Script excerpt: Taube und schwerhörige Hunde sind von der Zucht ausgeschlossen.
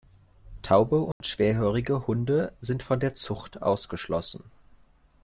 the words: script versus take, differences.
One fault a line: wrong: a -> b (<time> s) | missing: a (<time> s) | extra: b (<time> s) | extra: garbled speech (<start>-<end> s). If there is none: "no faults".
no faults